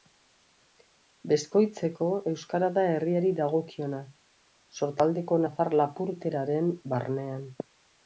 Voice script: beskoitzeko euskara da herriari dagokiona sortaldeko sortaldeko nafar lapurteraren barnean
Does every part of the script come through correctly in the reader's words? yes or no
no